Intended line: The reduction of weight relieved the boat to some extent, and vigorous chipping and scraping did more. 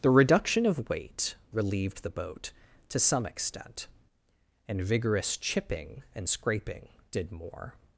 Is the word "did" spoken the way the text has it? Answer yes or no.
yes